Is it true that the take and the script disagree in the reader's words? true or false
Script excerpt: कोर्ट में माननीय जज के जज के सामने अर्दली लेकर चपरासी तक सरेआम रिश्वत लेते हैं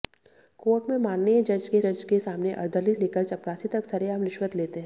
false